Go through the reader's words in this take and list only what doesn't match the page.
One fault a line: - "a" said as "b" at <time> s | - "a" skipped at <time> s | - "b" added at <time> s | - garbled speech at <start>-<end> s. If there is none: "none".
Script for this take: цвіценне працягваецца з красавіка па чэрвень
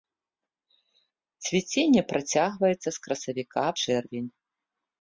- "па" skipped at 3.7 s